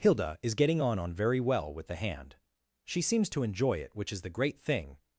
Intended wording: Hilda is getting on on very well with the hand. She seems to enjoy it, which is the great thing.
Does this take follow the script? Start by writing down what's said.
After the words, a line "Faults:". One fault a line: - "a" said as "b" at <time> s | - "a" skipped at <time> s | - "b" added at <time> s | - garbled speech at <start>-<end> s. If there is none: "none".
Hilda is getting on on very well with the hand. She seems to enjoy it, which is the great thing.
Faults:
none